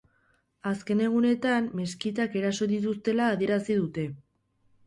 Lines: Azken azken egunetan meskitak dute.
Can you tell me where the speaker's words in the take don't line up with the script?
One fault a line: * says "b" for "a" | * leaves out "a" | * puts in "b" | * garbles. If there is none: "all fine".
* leaves out "azken"
* puts in "eraso dituztela adierazi"